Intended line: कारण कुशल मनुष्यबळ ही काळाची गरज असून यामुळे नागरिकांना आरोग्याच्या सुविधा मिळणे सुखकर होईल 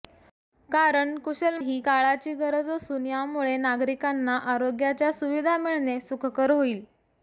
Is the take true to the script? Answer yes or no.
no